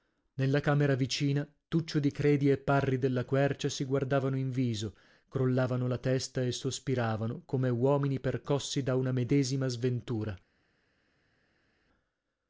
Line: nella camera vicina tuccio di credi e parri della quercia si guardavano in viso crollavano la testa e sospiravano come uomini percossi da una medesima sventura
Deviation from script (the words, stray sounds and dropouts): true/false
false